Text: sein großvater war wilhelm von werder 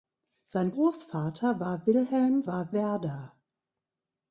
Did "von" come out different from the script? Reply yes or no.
yes